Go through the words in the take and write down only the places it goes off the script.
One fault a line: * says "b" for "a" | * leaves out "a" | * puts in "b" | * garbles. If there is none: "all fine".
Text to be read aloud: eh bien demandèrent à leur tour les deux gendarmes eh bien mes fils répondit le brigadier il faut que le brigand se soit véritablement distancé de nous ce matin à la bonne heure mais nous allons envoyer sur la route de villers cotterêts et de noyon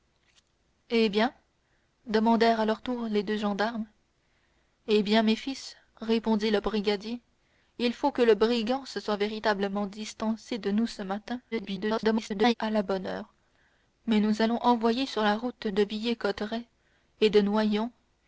* garbles